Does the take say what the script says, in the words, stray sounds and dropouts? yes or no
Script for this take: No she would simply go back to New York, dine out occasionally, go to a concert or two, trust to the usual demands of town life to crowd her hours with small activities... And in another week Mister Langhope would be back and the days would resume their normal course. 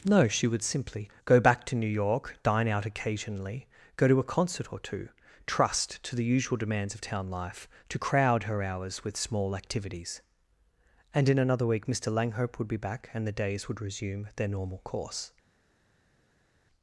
yes